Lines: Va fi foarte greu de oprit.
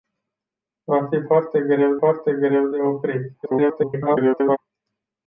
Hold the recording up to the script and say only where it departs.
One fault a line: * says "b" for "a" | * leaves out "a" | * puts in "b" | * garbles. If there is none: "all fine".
* puts in "foarte greu"
* garbles